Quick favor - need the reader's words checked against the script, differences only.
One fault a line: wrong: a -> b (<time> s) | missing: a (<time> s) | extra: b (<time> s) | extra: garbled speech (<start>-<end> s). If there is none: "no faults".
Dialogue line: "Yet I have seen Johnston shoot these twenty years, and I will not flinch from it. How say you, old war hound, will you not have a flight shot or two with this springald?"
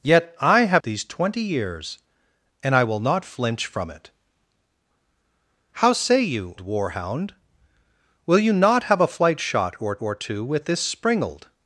missing: seen Johnston shoot (0.8 s)
missing: old (6.6 s)
extra: or (10.0 s)